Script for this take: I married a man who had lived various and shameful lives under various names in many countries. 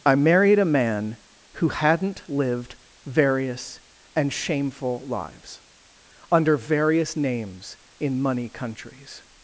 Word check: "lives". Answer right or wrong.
right